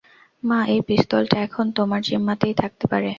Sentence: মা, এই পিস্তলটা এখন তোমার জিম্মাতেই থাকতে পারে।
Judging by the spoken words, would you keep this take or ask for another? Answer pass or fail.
pass